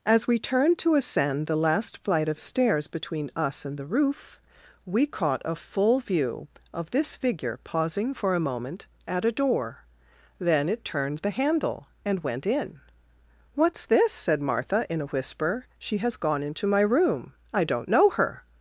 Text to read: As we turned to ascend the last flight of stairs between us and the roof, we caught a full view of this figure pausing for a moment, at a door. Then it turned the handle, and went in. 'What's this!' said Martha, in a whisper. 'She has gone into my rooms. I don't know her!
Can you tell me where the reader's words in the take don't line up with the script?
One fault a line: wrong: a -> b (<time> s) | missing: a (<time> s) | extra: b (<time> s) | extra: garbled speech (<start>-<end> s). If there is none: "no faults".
wrong: rooms -> room (16.8 s)